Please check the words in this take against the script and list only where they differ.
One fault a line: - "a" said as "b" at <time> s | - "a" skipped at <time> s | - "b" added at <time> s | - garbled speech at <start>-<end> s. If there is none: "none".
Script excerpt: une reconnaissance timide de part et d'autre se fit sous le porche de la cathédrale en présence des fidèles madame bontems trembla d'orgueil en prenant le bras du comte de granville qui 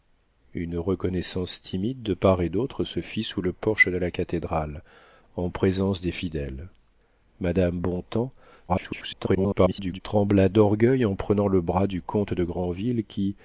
- garbled speech at 8.7-10.0 s